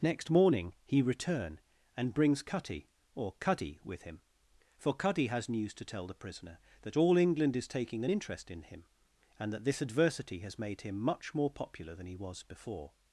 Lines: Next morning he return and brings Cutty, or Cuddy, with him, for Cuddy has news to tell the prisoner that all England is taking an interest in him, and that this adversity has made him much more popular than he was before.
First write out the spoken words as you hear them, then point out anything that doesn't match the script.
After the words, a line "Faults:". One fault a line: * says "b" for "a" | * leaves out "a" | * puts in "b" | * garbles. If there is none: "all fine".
Next morning he return and brings Cutty, or Cuddy, with him, for Cuddy has news to tell the prisoner that all England is taking an interest in him, and that this adversity has made him much more popular than he was before.
Faults:
all fine